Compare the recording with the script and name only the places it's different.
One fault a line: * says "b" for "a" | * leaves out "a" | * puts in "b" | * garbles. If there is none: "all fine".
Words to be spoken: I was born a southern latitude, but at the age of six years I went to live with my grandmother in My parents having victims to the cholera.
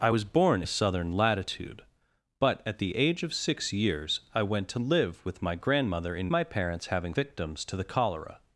all fine